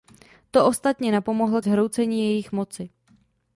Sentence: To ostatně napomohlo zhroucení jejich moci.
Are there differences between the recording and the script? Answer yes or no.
no